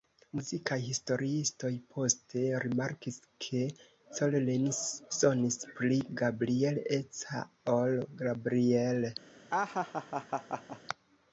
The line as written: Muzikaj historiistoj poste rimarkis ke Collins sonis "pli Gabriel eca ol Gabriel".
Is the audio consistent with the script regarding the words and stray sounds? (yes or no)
no